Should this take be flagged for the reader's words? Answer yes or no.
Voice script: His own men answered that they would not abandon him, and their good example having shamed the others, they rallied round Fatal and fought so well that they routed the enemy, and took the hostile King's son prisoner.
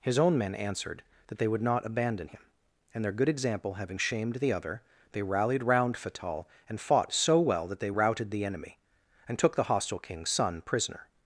yes